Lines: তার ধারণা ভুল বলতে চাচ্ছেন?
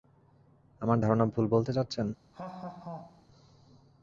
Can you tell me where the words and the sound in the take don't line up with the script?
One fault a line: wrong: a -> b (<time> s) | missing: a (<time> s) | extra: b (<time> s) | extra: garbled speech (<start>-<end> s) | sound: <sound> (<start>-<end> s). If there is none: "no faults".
wrong: তার -> আমার (0.8 s)
sound: laugh (2.3-3.3 s)